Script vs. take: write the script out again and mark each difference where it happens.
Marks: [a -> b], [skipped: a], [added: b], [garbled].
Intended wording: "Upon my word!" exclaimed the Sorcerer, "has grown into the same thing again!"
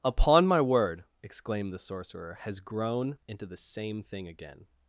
"Upon my word!" exclaimed the Sorcerer, "has grown into the same thing again!"